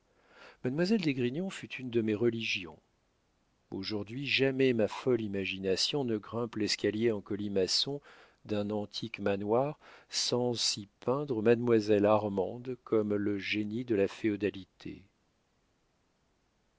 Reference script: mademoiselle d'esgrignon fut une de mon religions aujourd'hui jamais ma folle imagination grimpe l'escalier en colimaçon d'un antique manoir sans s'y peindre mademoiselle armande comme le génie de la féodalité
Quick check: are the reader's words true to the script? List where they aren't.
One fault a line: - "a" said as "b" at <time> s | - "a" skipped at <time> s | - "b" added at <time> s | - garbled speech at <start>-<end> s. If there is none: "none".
- "mon" said as "mes" at 2.0 s
- "ne" added at 6.0 s